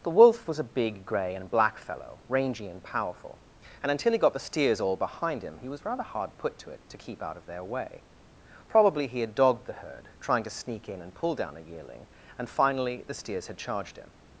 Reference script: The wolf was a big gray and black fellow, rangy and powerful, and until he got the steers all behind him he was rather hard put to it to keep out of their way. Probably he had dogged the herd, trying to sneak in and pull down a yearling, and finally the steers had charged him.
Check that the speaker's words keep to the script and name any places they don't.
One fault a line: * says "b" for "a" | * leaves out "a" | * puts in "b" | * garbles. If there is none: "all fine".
all fine